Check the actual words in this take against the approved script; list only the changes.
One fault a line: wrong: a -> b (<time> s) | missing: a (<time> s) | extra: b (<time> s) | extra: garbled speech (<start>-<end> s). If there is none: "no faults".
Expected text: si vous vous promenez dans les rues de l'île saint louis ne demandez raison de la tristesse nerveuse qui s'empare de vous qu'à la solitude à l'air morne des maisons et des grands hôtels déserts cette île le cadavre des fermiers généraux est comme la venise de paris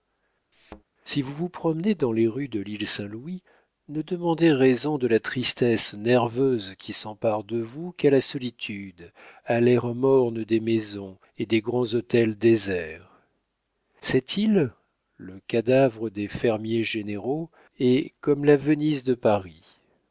no faults